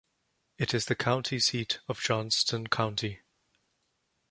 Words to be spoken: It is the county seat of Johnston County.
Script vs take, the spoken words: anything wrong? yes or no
no